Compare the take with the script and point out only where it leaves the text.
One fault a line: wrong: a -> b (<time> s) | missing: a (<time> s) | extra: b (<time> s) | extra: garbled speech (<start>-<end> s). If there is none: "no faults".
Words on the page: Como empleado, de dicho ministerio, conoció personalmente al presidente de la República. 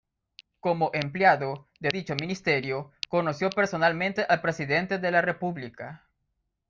no faults